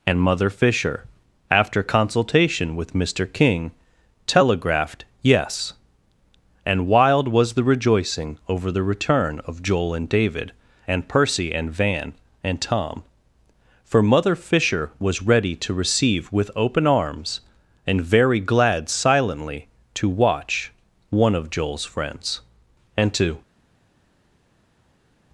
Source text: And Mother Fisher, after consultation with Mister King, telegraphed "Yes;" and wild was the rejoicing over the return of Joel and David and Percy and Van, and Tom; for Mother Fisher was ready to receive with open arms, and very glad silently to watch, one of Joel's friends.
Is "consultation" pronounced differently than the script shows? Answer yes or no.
no